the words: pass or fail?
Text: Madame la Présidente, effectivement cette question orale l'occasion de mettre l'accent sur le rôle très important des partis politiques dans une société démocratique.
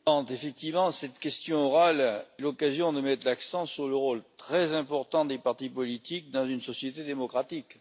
pass